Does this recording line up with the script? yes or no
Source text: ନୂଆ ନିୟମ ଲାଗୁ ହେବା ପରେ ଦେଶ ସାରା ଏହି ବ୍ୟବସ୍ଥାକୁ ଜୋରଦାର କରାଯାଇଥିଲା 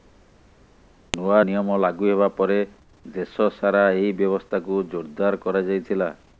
yes